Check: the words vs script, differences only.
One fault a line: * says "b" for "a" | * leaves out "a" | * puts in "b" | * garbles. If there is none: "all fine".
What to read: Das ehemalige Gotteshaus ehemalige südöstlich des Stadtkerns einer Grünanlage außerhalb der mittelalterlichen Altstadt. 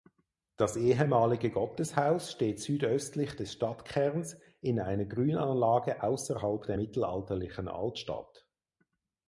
* says "steht" for "ehemalige"
* puts in "in"